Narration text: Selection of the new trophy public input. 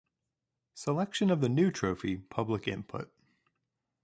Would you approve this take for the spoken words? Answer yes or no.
yes